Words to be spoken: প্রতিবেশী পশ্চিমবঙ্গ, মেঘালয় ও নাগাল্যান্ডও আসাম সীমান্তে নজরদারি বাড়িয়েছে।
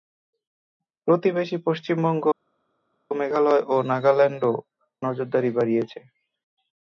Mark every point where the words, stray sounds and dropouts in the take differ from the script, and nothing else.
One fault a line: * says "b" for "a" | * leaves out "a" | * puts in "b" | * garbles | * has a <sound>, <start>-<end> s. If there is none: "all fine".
* leaves out "আসাম সীমান্তে"